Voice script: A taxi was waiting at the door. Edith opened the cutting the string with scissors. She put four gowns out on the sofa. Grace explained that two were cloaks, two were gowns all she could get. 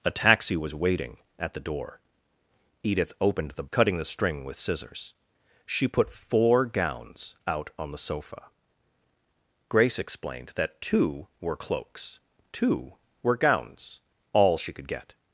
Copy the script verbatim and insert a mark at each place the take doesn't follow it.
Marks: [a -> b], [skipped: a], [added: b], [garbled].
A taxi was waiting at the door. Edith opened the cutting the string with scissors. She put four gowns out on the sofa. Grace explained that two were cloaks, two were gowns all she could get.